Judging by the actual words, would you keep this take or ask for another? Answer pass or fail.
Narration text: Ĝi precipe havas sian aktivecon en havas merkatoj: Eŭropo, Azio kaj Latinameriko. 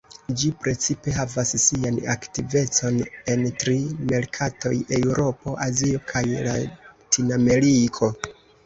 fail